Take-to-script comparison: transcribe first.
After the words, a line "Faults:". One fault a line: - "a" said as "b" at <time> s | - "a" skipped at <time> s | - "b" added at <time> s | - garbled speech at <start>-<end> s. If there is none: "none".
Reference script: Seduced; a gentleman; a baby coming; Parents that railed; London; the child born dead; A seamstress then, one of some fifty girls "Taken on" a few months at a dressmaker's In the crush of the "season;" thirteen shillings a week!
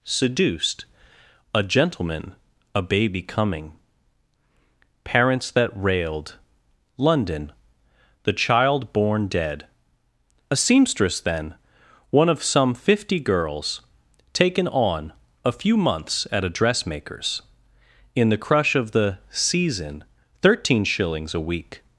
Seduced; a gentleman; a baby coming; Parents that railed; London; the child born dead; A seamstress then, one of some fifty girls "Taken on" a few months at a dressmaker's In the crush of the "season;" thirteen shillings a week!
Faults:
none